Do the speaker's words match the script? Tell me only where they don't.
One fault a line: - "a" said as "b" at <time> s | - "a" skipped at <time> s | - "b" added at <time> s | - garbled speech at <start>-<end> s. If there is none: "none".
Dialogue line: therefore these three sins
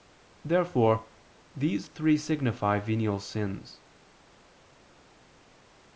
- "signify venial" added at 2.2 s